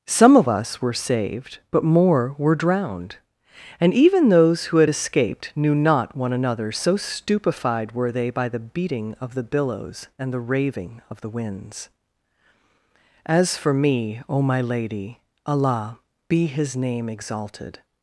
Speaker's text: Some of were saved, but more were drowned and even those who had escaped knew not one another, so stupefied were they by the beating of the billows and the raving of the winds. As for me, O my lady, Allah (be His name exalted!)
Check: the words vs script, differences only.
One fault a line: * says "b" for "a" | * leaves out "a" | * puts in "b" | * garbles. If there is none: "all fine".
* puts in "us"